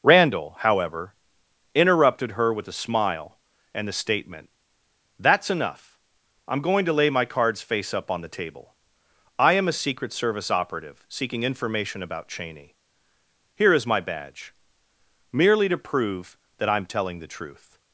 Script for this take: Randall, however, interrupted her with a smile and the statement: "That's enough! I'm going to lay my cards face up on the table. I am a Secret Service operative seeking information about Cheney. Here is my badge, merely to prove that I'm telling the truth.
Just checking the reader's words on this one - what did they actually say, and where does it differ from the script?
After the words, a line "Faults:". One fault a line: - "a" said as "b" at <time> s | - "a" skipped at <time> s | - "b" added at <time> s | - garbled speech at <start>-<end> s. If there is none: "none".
Randall, however, interrupted her with a smile and the statement: "That's enough! I'm going to lay my cards face up on the table. I am a Secret Service operative seeking information about Cheney. Here is my badge, merely to prove that I'm telling the truth.
Faults:
none